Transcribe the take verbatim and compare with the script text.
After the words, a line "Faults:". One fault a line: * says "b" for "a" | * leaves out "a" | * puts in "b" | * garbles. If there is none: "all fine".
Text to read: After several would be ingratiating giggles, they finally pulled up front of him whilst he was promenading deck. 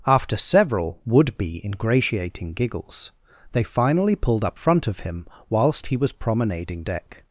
After several would be ingratiating giggles, they finally pulled up front of him whilst he was promenading deck.
Faults:
all fine